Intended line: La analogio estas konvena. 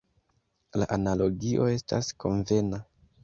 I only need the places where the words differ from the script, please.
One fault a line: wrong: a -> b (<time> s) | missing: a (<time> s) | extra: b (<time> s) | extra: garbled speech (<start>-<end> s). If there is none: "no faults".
no faults